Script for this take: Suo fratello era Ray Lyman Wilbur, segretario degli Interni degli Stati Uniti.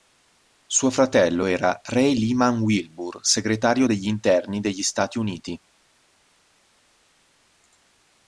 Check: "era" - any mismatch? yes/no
no